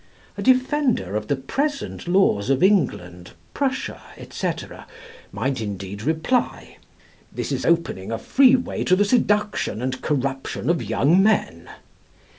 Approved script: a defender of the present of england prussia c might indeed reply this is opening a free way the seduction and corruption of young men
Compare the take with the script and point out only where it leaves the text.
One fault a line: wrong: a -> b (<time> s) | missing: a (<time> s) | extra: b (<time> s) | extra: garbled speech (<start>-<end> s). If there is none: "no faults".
extra: laws (2.1 s)
extra: to (8.8 s)